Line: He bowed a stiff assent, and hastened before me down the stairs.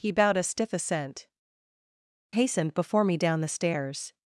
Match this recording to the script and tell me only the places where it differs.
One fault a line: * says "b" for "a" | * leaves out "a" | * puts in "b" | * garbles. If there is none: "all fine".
* leaves out "and"